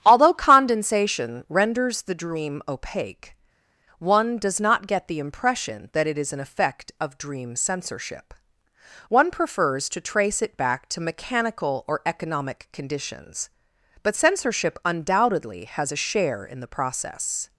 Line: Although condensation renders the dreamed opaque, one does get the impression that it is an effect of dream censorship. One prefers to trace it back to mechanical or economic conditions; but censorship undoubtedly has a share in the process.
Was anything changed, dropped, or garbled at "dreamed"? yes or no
yes